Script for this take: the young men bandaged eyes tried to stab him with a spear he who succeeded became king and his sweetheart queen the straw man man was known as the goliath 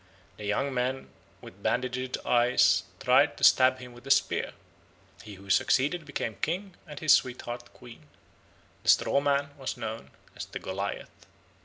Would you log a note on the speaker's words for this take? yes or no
yes